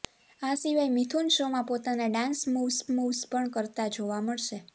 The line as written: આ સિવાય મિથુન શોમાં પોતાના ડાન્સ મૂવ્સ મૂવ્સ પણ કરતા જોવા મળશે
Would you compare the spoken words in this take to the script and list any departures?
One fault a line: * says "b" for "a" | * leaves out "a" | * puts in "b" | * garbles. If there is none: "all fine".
all fine